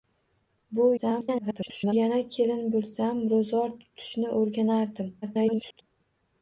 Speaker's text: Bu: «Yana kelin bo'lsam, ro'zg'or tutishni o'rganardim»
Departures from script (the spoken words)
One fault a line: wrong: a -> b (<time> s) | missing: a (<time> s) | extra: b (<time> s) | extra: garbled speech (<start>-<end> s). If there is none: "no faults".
extra: garbled speech (1.0-1.9 s)
extra: garbled speech (5.2-5.8 s)